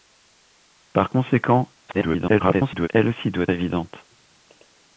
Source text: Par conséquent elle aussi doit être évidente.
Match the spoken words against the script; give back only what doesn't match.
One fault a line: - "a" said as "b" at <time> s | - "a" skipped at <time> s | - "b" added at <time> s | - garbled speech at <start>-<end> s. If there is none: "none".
- garbled speech at 1.9-2.9 s
- "être" skipped at 3.5 s